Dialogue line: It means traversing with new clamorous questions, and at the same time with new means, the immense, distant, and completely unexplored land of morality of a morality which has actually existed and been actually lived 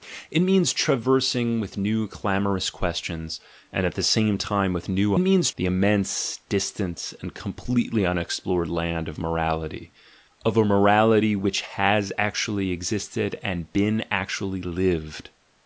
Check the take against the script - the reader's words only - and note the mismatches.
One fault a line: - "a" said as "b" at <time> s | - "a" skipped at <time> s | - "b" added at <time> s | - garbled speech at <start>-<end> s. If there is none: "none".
none